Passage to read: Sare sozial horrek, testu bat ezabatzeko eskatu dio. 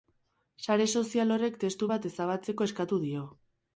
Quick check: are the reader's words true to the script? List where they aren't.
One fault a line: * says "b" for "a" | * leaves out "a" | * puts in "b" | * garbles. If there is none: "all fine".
all fine